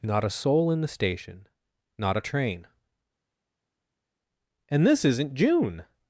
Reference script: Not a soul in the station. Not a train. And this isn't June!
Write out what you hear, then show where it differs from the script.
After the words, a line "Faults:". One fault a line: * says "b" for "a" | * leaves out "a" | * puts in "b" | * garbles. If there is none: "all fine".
Not a soul in the station. Not a train. And this isn't June!
Faults:
all fine